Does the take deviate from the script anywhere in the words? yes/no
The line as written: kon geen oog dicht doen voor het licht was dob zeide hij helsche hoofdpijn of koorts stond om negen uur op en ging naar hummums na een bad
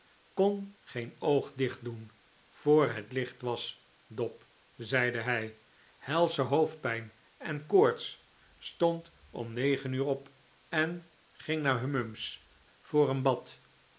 yes